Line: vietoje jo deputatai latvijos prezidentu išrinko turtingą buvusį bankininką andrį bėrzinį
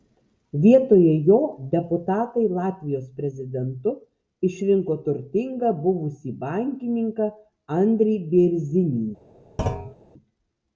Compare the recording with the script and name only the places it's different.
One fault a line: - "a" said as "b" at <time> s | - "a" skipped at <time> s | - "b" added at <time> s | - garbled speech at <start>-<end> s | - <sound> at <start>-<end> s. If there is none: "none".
- thud at 9.6-10.0 s